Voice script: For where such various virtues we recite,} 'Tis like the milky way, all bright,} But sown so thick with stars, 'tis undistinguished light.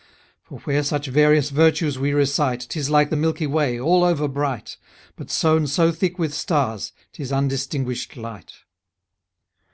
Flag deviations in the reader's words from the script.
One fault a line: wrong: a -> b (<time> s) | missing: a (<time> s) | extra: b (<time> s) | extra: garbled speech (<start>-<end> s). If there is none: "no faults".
extra: over (4.0 s)